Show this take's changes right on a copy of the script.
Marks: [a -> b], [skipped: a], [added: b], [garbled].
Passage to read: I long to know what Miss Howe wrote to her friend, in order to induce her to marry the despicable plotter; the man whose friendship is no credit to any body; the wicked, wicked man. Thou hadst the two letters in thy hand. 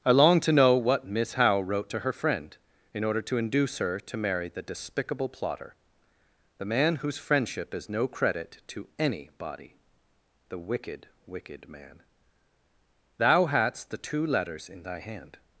I long to know what Miss Howe wrote to her friend, in order to induce her to marry the despicable plotter; the man whose friendship is no credit to any body; the wicked, wicked man. Thou hadst the two letters in thy hand.